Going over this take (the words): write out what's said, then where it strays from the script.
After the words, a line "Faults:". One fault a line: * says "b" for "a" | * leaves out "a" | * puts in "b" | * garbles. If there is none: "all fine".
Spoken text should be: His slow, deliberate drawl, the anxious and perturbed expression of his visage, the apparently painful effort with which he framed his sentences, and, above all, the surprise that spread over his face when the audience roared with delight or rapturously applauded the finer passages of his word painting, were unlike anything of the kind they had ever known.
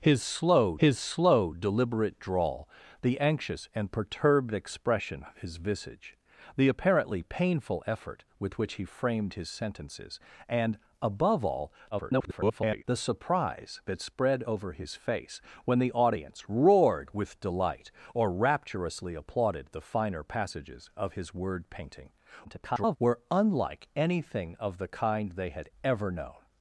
His slow his slow, deliberate drawl, the anxious and perturbed expression of his visage, the apparently painful effort with which he framed his sentences, and, above all, [garbled] the surprise that spread over his face when the audience roared with delight or rapturously applauded the finer passages of his word painting, [garbled] were unlike anything of the kind they had ever known.
Faults:
* puts in "his slow"
* garbles
* garbles